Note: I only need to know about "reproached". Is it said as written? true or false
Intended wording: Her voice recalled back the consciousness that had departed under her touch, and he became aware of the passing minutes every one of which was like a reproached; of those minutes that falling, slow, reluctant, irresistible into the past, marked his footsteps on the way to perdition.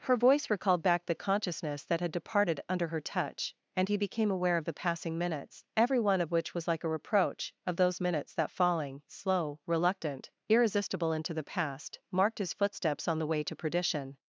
false